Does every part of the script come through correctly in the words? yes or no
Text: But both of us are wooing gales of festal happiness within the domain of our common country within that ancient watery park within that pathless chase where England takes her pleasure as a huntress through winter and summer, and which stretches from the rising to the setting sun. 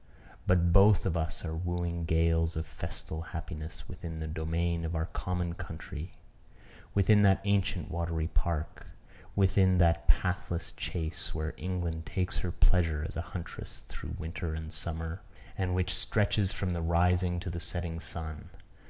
yes